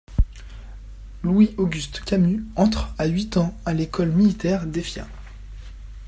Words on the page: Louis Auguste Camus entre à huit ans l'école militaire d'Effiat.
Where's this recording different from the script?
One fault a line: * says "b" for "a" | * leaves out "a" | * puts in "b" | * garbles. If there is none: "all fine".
* puts in "à"